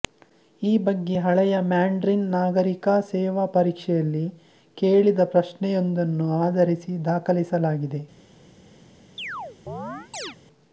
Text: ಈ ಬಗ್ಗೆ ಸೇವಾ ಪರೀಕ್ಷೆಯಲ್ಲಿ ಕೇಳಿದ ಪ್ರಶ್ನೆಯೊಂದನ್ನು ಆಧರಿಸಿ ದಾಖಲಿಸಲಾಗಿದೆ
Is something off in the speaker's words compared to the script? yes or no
yes